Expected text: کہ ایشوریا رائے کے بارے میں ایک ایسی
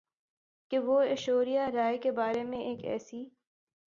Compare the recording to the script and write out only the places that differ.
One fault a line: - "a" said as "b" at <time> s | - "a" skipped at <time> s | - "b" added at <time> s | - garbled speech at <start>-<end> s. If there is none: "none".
- "وہ" added at 0.8 s